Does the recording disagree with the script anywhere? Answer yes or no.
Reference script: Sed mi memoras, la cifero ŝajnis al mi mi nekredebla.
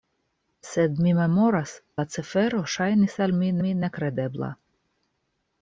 no